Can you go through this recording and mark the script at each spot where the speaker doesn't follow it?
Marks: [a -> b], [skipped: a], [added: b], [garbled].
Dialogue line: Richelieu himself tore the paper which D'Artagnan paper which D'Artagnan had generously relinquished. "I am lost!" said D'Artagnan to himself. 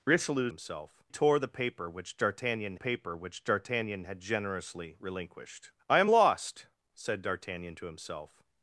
Richelieu himself tore the paper which D'Artagnan paper which D'Artagnan had generously relinquished. "I am lost!" said D'Artagnan to himself.